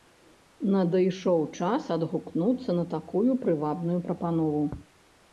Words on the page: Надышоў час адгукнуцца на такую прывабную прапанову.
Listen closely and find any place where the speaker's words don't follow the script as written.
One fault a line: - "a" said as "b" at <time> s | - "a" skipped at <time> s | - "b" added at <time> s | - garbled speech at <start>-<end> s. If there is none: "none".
none